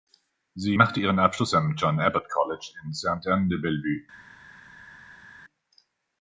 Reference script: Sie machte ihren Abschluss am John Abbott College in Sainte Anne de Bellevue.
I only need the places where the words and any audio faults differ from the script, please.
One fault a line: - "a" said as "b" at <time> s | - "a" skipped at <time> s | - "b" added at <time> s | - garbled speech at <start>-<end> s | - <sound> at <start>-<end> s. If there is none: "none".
none